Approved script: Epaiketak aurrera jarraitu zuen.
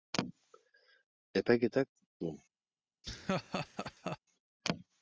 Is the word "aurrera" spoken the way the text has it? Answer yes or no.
no